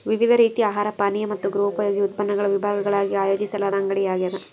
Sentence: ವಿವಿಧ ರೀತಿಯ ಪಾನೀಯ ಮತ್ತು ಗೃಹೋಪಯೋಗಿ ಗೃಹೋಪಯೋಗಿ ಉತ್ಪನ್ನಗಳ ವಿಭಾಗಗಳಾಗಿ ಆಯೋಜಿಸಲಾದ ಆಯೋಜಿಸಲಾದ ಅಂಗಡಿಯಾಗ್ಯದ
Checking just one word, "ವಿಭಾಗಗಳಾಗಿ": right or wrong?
right